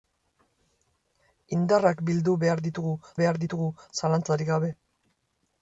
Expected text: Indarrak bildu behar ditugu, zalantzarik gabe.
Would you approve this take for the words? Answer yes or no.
no